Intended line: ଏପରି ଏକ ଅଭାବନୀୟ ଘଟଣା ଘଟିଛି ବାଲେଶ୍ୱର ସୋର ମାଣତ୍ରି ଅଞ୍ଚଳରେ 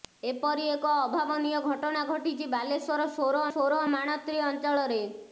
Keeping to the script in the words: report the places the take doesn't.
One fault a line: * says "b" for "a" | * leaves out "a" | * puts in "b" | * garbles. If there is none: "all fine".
* puts in "ସୋର"